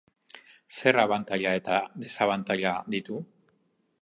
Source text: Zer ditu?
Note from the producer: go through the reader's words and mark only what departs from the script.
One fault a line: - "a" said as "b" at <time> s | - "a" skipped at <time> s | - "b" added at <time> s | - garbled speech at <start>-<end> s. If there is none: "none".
- "abantaila eta desabantaila" added at 1.0 s